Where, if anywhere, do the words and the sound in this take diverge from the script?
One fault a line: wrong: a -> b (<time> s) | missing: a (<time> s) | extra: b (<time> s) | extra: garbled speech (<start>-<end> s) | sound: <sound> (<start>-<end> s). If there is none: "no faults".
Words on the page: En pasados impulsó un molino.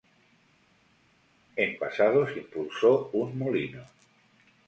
no faults